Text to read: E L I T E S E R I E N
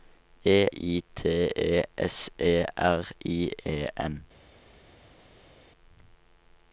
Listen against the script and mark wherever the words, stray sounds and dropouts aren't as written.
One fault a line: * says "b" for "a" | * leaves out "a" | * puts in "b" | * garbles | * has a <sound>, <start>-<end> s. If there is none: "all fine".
* leaves out "L"